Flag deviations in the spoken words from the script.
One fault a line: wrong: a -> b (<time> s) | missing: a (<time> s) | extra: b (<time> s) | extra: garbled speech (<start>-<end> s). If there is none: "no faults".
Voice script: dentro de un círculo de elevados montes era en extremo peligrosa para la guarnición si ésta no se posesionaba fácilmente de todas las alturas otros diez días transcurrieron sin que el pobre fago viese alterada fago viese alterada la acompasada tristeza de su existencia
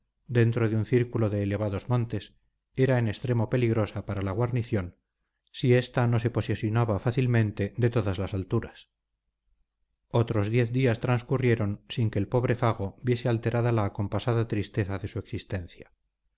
missing: fago viese alterada (13.7 s)